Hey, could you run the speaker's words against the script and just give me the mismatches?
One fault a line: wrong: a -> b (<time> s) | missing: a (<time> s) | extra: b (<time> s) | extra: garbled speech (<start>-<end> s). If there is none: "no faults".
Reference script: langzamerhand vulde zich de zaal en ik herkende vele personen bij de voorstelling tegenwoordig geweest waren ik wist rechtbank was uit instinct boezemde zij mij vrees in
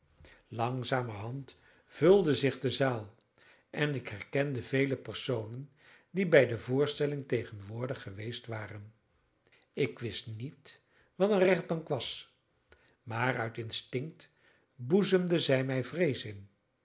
extra: die (6.1 s)
extra: niet wat een (10.3 s)
extra: maar (13.0 s)